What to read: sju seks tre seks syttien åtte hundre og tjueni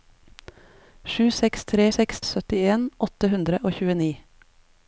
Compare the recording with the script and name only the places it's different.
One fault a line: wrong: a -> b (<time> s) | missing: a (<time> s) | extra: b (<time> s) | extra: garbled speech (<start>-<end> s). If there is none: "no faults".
no faults